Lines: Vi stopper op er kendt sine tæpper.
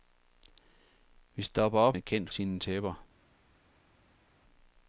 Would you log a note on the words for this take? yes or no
no